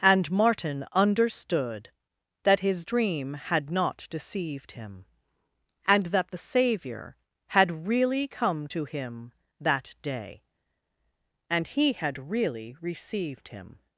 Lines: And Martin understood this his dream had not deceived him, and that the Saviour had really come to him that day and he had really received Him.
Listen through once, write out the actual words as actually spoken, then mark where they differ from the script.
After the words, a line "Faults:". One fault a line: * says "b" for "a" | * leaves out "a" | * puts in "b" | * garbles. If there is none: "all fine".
And Martin understood that his dream had not deceived him, and that the Saviour had really come to him that day and he had really received Him.
Faults:
* says "that" for "this"